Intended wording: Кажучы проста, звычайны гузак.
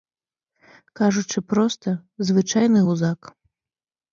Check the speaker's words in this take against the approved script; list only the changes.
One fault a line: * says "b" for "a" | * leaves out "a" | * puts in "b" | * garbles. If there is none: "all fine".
all fine